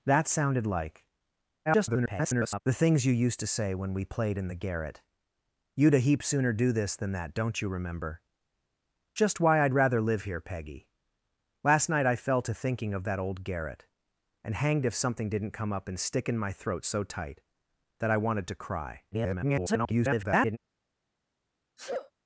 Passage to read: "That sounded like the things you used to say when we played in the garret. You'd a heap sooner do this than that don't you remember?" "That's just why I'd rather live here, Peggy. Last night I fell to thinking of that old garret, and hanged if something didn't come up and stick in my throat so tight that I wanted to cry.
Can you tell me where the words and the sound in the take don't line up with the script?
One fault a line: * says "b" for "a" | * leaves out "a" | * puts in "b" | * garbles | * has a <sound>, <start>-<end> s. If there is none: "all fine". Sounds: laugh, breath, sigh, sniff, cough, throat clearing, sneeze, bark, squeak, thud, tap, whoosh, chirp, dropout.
* garbles
* leaves out "That's"
* garbles
* has a sneeze, 21.8-22.1 s